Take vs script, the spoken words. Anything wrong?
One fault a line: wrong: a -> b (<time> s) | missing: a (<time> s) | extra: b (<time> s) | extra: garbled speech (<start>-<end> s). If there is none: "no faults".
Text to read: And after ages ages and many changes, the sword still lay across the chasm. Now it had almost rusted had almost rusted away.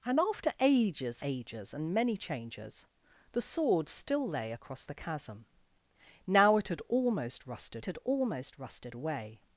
no faults